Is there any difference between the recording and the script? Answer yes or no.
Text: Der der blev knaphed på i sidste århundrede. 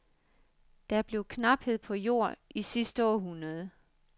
yes